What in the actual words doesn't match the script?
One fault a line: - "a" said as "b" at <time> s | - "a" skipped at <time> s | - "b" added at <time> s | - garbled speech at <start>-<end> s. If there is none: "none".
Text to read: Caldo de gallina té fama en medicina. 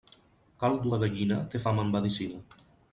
none